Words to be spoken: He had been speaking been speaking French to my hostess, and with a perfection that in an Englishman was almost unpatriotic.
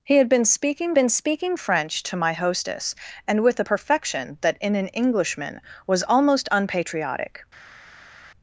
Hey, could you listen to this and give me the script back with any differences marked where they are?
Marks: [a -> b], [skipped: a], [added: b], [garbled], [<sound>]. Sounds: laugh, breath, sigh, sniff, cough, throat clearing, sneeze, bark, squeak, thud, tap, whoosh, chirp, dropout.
He had been speaking been speaking French to my hostess, and with a perfection that in an Englishman was almost unpatriotic.